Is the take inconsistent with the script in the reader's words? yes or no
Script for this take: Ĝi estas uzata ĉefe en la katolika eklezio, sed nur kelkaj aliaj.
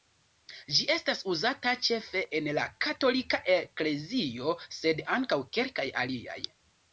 yes